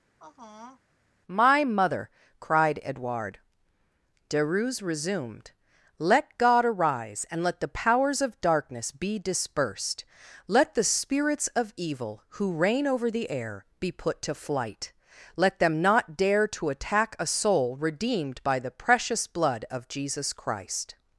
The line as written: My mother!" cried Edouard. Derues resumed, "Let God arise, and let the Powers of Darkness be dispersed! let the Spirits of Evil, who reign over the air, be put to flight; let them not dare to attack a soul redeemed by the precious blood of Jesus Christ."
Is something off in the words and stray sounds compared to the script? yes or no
yes